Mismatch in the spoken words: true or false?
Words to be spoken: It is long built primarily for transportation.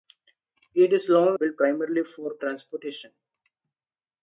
false